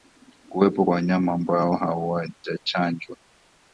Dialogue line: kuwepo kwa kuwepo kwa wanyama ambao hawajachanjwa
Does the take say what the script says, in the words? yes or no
no